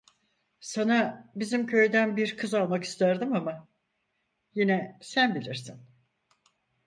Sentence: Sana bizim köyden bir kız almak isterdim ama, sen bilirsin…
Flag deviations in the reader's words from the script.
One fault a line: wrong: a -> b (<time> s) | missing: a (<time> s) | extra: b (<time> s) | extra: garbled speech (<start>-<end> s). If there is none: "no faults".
extra: yine (4.5 s)